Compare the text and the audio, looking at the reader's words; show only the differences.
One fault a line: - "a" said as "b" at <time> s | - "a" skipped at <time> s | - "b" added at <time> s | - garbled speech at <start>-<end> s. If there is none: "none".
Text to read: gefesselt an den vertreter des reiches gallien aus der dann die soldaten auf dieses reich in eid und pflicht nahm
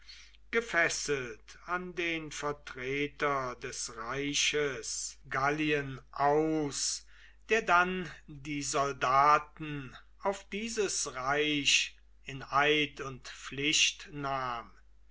none